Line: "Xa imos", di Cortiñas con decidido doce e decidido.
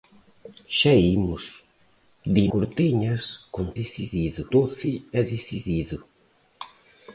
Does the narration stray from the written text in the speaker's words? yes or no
no